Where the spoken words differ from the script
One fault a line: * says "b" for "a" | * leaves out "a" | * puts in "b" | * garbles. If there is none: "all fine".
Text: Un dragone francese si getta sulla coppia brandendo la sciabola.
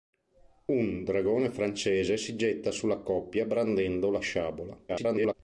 * garbles